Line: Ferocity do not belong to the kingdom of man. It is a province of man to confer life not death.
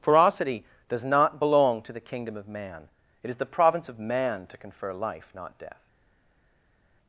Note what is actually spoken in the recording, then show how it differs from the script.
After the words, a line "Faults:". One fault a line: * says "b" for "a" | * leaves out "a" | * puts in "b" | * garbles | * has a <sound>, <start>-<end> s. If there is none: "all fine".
Ferocity does not belong to the kingdom of man. It is the province of man to confer life not death.
Faults:
* says "does" for "do"
* says "the" for "a"